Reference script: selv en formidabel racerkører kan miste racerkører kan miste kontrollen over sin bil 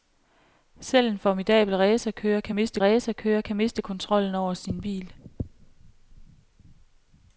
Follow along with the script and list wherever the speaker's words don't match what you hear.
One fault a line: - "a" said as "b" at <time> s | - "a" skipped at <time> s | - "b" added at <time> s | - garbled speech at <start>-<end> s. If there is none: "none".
none